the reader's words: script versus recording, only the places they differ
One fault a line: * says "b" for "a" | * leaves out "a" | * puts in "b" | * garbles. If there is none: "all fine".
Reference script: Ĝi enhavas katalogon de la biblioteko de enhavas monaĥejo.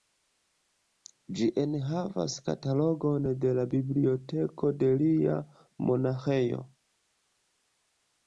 * says "lia" for "enhavas"